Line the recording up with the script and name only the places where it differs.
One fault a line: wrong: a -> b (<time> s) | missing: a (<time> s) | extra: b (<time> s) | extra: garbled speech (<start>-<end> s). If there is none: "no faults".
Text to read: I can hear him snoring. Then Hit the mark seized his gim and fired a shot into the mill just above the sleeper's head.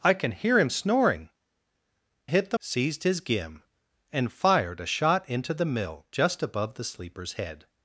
missing: Then (1.3 s)
missing: mark (2.6 s)